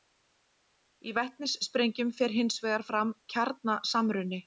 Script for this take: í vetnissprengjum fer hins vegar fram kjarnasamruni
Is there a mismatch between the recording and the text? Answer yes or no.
no